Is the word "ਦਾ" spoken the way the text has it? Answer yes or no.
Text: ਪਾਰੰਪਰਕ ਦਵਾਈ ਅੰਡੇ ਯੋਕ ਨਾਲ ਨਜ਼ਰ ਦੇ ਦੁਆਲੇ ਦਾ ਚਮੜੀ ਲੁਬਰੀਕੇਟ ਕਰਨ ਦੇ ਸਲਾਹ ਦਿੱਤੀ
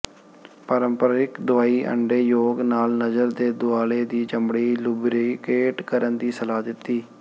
no